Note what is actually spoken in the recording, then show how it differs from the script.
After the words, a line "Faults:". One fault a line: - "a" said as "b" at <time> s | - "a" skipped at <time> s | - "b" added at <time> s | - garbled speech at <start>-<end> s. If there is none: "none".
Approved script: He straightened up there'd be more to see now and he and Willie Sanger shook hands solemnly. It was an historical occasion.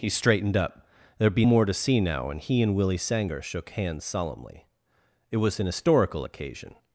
He straightened up there'd be more to see now and he and Willie Sanger shook hands solemnly. It was an historical occasion.
Faults:
none